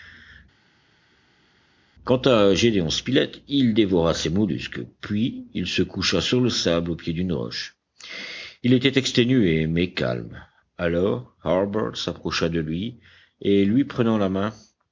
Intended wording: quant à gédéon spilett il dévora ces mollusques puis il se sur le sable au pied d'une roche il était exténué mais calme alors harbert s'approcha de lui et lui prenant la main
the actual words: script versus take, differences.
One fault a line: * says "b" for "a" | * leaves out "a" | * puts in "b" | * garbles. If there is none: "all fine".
* puts in "coucha"